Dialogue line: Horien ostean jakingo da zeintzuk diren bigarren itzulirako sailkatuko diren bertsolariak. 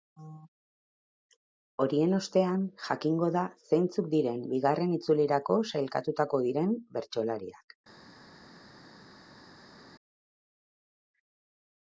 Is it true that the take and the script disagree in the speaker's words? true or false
false